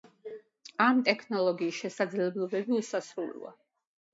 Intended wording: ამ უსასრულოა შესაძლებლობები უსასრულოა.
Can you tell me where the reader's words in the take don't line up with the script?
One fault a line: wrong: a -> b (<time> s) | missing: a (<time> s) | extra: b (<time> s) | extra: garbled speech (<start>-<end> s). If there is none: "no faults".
wrong: უსასრულოა -> ტექნოლოგიის (1.1 s)